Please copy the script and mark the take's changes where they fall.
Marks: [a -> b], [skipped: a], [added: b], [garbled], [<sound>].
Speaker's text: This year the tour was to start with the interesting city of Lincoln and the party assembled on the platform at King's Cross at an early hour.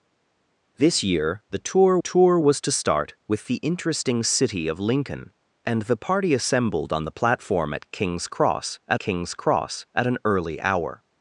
This year the tour [added: tour] was to start with the interesting city of Lincoln and the party assembled on the platform at King's Cross at [added: King's Cross at] an early hour.